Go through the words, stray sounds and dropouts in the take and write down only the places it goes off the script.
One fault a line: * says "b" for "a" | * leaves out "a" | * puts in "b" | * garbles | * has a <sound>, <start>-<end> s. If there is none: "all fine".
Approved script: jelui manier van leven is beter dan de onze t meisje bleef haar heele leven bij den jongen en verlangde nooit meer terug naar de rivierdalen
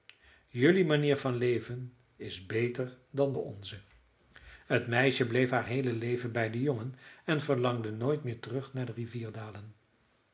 all fine